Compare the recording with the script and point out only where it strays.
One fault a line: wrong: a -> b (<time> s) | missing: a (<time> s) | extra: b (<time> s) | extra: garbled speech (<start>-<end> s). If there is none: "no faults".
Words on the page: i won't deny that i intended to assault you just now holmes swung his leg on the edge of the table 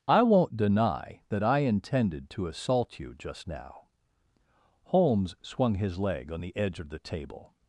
no faults